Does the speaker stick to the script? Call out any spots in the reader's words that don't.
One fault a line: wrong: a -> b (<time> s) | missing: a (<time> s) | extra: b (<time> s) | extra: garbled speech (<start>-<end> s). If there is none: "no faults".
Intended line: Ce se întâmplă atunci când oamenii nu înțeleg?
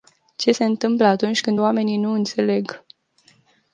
no faults